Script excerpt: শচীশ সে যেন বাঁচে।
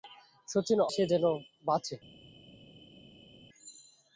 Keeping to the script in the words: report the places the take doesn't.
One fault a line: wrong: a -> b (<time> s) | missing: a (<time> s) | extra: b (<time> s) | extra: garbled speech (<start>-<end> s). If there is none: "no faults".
no faults